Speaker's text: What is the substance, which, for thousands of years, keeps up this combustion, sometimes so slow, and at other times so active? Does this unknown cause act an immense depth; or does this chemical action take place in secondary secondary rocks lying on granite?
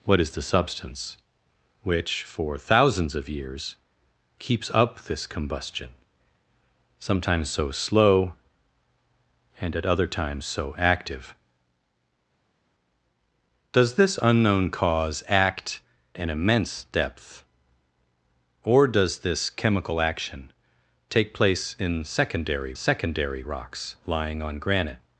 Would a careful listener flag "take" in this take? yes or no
no